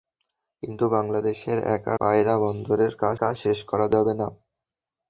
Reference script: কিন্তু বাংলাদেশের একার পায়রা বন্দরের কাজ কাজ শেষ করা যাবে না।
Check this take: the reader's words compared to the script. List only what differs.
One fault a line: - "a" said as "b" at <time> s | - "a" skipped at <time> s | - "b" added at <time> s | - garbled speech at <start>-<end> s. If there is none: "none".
none